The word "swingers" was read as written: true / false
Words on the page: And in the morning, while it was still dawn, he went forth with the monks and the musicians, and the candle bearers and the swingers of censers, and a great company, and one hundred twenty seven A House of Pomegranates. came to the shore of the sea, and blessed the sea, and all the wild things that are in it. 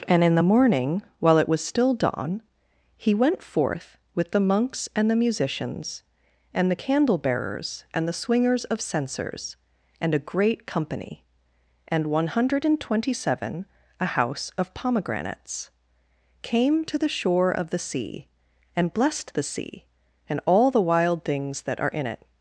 true